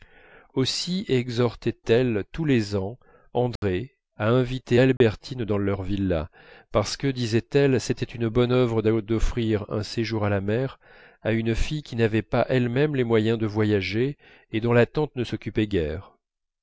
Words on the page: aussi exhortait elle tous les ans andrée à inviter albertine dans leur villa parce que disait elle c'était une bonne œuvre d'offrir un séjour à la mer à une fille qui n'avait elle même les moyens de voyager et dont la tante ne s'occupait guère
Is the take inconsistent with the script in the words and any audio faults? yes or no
yes